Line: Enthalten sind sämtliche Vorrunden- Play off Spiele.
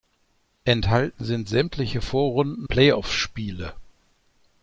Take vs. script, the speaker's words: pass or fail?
pass